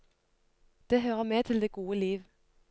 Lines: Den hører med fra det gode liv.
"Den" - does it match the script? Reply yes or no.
no